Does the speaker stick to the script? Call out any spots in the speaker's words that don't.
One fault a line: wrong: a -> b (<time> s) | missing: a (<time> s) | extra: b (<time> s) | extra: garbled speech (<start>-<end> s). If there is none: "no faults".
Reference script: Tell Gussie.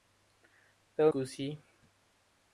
no faults